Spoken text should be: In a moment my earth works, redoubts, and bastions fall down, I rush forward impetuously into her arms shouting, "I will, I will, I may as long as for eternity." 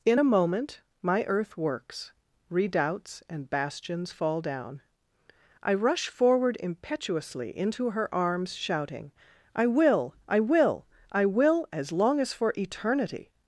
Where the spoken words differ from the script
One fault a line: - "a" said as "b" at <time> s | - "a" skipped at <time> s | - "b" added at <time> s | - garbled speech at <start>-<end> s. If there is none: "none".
- "may" said as "will" at 11.2 s